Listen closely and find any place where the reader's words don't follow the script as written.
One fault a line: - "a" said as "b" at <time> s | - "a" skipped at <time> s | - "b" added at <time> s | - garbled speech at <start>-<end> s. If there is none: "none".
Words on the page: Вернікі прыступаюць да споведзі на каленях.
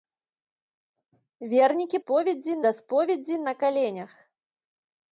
- "прыступаюць" said as "споведзі" at 2.0 s